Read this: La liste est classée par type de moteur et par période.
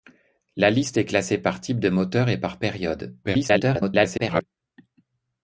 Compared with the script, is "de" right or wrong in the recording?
right